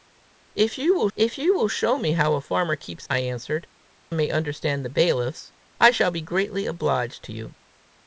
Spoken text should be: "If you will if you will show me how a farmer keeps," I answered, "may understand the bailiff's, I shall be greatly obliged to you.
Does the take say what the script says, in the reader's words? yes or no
yes